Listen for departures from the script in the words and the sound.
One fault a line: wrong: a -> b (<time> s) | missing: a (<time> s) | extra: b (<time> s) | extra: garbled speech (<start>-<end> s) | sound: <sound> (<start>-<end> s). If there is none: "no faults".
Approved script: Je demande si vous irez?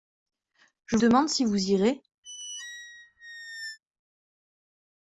sound: squeak (2.2-3.8 s)